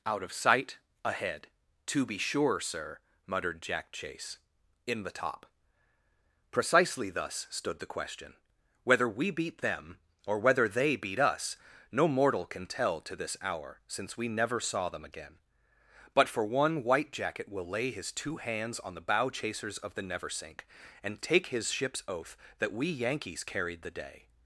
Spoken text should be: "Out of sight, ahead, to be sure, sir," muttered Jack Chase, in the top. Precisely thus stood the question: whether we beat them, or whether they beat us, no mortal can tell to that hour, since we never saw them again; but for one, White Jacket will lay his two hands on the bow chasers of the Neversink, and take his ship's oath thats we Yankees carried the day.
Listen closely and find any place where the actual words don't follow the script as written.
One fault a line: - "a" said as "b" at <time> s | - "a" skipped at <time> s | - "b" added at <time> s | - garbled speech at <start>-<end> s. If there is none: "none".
- "that" said as "this" at 13.2 s
- "thats" said as "that" at 22.6 s